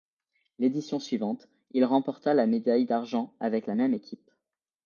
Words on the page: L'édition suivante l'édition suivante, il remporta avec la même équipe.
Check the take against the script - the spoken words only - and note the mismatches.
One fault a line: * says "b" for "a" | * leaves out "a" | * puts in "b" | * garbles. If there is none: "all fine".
* says "il remporta la médaille d'argent" for "l'édition suivante il remporta"